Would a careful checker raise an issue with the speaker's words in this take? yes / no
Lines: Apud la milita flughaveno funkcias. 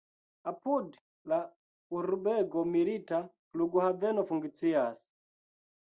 yes